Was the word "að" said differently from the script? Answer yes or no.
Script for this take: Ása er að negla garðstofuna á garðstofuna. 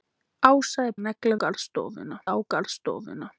no